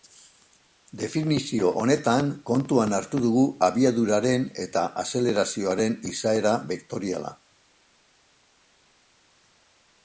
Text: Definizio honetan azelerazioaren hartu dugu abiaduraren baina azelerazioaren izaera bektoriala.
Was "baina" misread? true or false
true